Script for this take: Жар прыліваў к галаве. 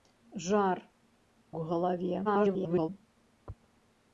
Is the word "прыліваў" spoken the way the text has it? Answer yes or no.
no